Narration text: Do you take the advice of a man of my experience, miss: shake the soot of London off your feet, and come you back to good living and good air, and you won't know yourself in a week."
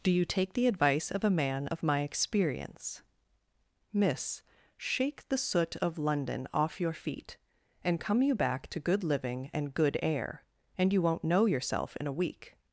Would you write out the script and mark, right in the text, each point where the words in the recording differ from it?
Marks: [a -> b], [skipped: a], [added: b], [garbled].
Do you take the advice of a man of my experience, miss: shake the soot of London off your feet, and come you back to good living and good air, and you won't know yourself in a week."